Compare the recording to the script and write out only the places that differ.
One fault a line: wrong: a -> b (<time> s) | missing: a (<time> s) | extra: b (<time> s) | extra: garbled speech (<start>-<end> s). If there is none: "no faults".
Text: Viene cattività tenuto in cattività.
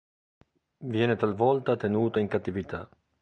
wrong: cattività -> talvolta (1.1 s)